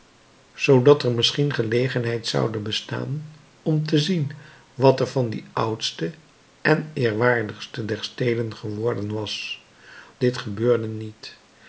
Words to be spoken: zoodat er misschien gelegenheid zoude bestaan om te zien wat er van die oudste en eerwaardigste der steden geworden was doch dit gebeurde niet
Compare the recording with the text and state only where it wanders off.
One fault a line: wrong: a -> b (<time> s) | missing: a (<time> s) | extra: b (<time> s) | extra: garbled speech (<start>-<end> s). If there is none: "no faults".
missing: doch (9.6 s)